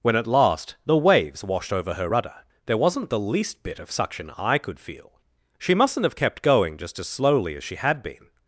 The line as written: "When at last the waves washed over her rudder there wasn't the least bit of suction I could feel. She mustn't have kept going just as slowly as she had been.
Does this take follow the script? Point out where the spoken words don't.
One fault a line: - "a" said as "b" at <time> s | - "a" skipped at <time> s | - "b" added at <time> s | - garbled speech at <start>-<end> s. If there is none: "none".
none